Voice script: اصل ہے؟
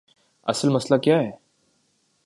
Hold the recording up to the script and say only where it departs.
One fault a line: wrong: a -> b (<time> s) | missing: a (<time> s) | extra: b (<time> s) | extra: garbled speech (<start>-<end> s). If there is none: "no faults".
extra: مسئلہ کیا (0.7 s)